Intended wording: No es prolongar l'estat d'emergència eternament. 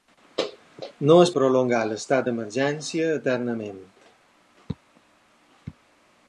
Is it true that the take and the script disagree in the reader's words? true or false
false